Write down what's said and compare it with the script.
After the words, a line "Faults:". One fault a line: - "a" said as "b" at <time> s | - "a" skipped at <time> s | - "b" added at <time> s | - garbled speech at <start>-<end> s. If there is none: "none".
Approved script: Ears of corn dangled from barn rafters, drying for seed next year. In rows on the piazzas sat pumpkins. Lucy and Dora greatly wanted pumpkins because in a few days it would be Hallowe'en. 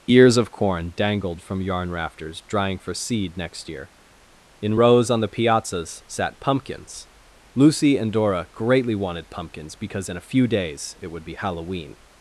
Ears of corn dangled from yarn rafters, drying for seed next year. In rows on the piazzas sat pumpkins. Lucy and Dora greatly wanted pumpkins because in a few days it would be Hallowe'en.
Faults:
- "barn" said as "yarn" at 1.6 s